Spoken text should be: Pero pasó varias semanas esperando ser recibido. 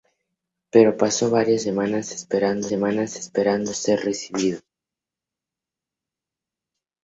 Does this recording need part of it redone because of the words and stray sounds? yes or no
yes